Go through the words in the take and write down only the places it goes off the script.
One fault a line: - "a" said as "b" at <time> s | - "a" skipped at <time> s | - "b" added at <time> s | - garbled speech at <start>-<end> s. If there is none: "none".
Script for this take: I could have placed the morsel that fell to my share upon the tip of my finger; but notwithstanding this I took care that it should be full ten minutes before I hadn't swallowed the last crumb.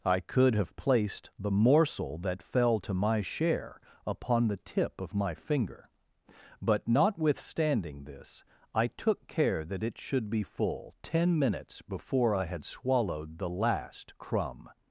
- "hadn't" said as "had" at 12.4 s